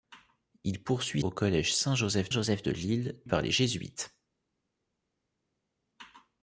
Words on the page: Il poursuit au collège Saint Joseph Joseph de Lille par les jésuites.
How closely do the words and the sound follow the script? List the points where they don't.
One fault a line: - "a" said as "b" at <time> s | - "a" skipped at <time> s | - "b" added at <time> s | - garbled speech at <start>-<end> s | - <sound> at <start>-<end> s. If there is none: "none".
none